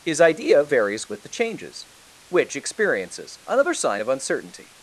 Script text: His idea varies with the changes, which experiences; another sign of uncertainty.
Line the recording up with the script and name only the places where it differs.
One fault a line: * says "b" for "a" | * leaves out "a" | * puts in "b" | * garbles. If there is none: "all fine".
all fine